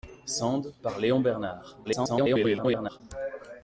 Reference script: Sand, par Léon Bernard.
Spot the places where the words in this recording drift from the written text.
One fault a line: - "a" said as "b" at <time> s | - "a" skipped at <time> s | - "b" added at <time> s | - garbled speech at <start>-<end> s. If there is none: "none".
- garbled speech at 1.8-3.0 s